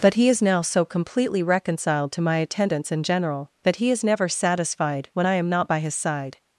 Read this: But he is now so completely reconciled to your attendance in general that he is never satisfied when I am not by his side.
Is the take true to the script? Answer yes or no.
no